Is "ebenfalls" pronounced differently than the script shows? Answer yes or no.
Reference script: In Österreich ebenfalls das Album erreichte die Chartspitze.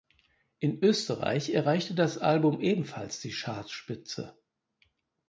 yes